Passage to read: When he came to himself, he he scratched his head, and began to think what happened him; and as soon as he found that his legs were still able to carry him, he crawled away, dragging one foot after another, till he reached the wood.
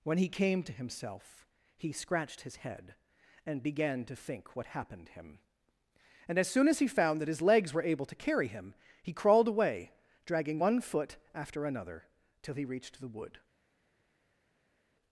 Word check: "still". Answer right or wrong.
wrong